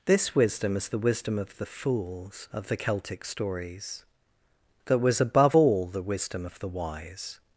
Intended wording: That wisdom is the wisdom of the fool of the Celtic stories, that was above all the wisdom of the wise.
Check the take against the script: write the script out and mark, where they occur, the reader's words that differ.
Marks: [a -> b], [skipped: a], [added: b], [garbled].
[That -> This] wisdom is the wisdom of the [fool -> fools] of the Celtic stories, that was above all the wisdom of the wise.